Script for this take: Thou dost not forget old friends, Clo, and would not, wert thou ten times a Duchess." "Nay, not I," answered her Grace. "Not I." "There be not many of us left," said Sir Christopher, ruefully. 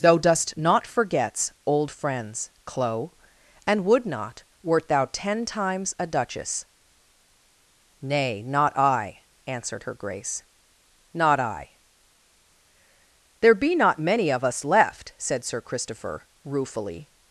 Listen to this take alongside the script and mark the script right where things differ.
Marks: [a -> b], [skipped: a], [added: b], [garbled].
Thou dost not [forget -> forgets] old friends, Clo, and would not, wert thou ten times a Duchess." "Nay, not I," answered her Grace. "Not I." "There be not many of us left," said Sir Christopher, ruefully.